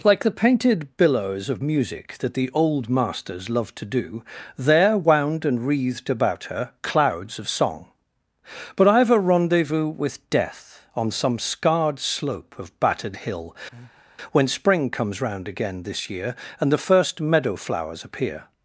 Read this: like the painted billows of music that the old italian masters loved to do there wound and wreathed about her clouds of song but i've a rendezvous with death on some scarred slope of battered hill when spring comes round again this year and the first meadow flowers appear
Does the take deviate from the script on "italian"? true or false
true